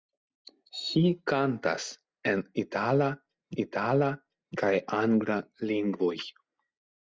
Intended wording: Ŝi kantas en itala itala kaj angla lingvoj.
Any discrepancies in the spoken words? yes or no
no